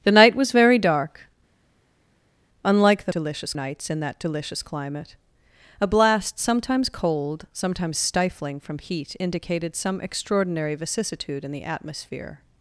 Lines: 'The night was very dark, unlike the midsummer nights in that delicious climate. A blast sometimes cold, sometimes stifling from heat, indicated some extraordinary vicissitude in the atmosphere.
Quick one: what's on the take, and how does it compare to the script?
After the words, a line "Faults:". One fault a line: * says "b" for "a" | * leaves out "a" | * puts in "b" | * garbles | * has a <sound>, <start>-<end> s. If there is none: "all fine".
'The night was very dark, unlike the delicious nights in that delicious climate. A blast sometimes cold, sometimes stifling from heat, indicated some extraordinary vicissitude in the atmosphere.
Faults:
* says "delicious" for "midsummer"